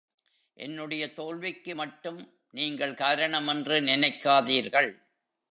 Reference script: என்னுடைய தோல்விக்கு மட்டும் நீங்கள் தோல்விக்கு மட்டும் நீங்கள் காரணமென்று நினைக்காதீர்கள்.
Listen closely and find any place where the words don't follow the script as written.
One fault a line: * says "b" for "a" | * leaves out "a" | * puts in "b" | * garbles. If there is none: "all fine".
* leaves out "தோல்விக்கு மட்டும் நீங்கள்"